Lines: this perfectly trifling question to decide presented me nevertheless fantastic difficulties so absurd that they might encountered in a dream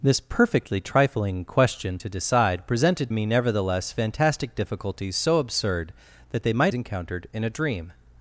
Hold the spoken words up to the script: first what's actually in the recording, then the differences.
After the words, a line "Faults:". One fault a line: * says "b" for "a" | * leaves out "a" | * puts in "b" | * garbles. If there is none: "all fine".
this perfectly trifling question to decide presented me nevertheless fantastic difficulties so absurd that they might encountered in a dream
Faults:
all fine